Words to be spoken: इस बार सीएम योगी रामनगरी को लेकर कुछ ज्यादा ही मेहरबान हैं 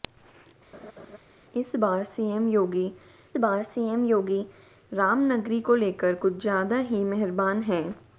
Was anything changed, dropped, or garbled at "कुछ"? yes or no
no